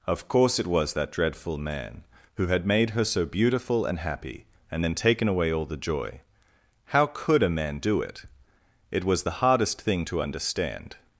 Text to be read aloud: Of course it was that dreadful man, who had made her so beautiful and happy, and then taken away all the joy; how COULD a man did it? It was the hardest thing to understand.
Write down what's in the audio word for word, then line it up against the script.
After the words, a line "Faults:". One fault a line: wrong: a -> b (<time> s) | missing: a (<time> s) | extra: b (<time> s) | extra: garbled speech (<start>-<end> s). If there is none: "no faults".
Of course it was that dreadful man, who had made her so beautiful and happy, and then taken away all the joy; how COULD a man do it? It was the hardest thing to understand.
Faults:
wrong: did -> do (7.8 s)